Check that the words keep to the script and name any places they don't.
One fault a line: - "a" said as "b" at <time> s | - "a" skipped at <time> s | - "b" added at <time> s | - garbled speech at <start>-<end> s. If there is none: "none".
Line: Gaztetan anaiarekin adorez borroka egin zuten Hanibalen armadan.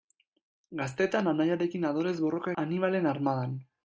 - "egin zuten" skipped at 2.5 s